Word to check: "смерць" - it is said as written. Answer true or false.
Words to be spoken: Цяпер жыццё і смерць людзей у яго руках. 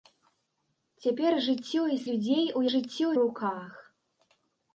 false